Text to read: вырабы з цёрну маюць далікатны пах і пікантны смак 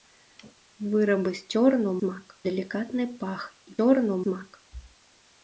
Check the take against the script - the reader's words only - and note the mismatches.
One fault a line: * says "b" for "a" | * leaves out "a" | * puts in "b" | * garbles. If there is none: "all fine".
* says "смак" for "маюць"
* says "цёрну" for "пікантны"